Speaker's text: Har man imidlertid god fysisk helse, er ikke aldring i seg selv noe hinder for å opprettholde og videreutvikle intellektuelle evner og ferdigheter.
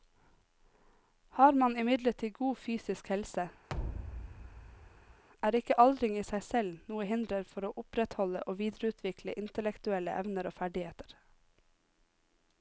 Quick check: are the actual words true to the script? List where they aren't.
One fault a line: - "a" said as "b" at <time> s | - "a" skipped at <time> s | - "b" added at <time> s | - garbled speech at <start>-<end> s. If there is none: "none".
none